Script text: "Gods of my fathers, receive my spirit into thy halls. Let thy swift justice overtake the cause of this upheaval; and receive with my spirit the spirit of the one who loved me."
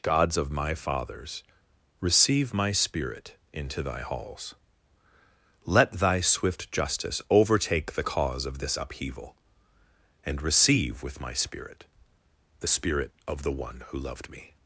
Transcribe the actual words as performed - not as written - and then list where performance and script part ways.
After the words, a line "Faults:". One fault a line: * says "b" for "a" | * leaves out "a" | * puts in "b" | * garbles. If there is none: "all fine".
"Gods of my fathers, receive my spirit into thy halls. Let thy swift justice overtake the cause of this upheaval; and receive with my spirit the spirit of the one who loved me."
Faults:
all fine